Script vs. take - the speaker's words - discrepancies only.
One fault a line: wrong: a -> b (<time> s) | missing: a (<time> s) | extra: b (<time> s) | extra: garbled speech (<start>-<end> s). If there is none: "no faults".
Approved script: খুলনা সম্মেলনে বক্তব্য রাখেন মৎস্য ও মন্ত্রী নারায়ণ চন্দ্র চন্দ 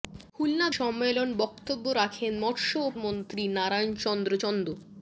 no faults